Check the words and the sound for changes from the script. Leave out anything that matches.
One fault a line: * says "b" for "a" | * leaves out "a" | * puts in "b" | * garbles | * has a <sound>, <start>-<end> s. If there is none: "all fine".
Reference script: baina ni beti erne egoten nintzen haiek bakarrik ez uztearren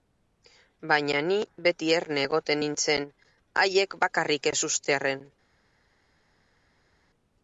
all fine